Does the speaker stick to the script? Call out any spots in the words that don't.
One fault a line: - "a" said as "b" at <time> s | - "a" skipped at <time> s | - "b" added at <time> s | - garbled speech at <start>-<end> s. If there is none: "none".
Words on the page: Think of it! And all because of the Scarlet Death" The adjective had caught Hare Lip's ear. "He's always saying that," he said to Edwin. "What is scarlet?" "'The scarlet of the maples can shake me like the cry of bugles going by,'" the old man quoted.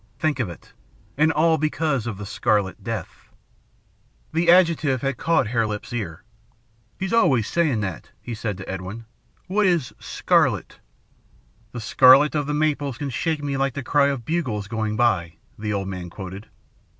none